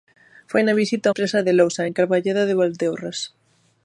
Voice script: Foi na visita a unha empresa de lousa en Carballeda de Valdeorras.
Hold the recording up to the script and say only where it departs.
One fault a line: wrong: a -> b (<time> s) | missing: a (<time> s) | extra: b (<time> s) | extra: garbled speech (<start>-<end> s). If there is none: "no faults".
missing: unha (1.1 s)